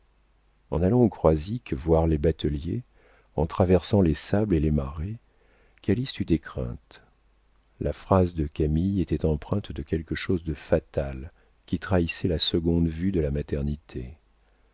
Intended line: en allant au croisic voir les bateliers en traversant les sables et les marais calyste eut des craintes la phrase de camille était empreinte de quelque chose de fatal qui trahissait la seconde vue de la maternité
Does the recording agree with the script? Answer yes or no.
yes